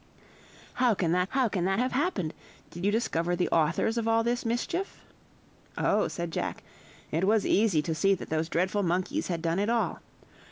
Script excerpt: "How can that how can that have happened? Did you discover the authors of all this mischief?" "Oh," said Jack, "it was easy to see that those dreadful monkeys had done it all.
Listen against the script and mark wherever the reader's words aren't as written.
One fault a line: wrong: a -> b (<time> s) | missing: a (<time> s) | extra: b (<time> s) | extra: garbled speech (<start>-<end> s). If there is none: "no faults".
no faults